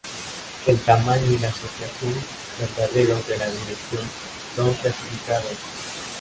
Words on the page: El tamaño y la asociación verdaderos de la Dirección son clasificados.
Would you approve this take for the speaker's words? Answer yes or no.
yes